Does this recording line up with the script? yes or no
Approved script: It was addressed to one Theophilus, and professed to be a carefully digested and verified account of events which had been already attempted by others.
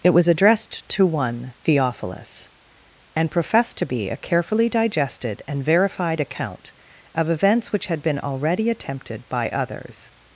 yes